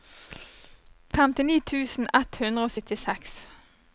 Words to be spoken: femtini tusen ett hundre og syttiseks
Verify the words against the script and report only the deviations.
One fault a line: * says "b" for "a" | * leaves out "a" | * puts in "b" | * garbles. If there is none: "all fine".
all fine